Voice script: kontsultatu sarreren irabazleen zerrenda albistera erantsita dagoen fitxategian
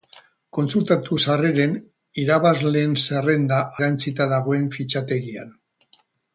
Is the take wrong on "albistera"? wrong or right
wrong